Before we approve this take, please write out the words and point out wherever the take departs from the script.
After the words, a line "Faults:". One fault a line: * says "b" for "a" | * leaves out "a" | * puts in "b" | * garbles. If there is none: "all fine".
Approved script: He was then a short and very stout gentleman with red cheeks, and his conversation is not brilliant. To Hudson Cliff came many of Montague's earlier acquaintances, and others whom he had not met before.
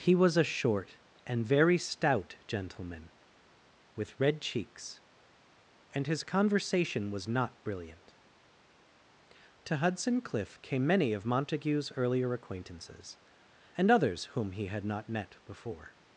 He was a short and very stout gentleman with red cheeks, and his conversation was not brilliant. To Hudson Cliff came many of Montague's earlier acquaintances, and others whom he had not met before.
Faults:
* leaves out "then"
* says "was" for "is"